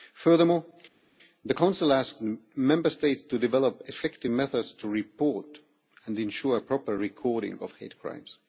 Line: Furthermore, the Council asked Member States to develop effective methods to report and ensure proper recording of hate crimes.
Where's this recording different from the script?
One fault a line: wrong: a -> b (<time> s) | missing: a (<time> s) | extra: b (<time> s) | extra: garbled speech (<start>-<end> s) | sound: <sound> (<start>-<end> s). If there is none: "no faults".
no faults